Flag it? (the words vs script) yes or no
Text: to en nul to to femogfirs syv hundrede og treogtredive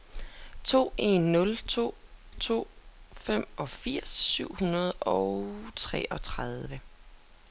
no